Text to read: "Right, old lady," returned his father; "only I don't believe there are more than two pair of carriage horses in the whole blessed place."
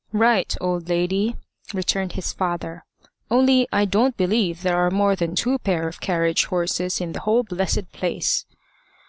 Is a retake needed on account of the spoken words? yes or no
no